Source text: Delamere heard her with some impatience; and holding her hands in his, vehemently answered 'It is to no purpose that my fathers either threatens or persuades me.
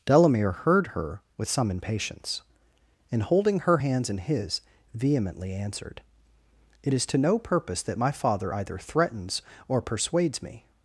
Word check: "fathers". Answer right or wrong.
wrong